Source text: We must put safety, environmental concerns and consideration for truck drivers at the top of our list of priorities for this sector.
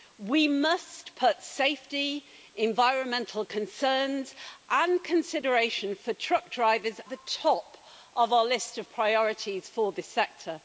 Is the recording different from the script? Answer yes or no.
yes